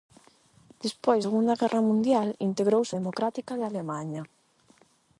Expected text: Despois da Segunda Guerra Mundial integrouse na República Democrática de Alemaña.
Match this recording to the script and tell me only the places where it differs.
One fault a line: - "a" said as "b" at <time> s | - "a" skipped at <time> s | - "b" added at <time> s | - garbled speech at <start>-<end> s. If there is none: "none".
- "da" skipped at 1.2 s
- "na República" skipped at 2.9 s